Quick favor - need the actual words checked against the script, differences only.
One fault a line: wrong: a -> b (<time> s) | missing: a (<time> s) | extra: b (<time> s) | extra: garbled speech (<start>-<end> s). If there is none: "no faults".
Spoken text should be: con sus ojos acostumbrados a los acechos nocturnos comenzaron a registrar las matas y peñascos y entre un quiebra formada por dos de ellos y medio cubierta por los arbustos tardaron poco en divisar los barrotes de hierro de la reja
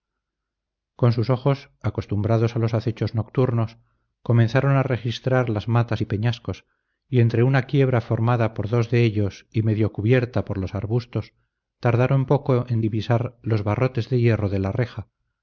wrong: un -> una (7.4 s)